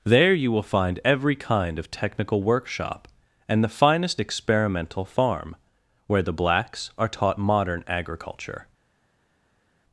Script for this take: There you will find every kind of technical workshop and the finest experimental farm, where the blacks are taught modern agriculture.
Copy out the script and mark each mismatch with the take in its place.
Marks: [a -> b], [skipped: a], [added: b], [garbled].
There you will find every kind of technical workshop and the finest experimental farm, where the blacks are taught modern agriculture.